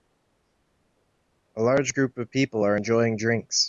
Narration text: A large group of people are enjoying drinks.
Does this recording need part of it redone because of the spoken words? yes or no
no